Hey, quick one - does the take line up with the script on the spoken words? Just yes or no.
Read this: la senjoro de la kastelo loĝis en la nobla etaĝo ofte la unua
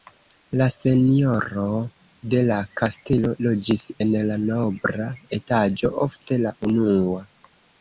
yes